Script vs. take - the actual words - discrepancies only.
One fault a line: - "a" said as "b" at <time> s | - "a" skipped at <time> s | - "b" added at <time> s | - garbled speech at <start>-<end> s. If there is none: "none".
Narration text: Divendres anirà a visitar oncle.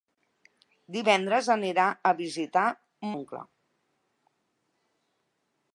none